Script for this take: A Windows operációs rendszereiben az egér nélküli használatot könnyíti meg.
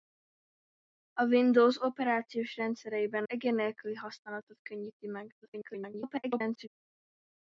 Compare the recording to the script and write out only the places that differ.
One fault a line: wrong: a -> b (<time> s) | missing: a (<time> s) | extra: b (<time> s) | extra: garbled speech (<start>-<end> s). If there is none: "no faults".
missing: az (3.2 s)
extra: garbled speech (5.4-6.7 s)